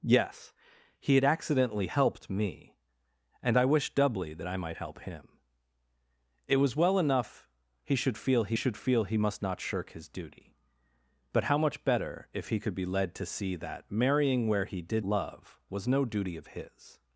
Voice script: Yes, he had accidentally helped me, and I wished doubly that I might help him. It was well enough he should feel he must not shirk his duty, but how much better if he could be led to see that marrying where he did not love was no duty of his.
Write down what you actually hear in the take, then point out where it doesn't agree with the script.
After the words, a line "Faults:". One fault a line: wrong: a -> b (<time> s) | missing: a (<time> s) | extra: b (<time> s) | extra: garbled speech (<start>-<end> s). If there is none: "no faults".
Yes, he had accidentally helped me, and I wished doubly that I might help him. It was well enough he should feel he should feel he must not shirk his duty, but how much better if he could be led to see that marrying where he did love was no duty of his.
Faults:
extra: should feel he (8.5 s)
missing: not (15.0 s)